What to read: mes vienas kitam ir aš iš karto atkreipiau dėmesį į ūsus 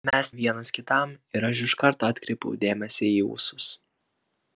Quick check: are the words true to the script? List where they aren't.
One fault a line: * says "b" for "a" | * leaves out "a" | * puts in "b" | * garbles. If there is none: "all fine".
all fine